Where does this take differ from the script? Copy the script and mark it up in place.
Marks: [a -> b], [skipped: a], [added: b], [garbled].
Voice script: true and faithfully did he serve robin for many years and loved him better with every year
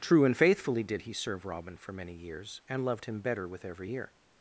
true and faithfully did he serve robin for many years and loved him better with every year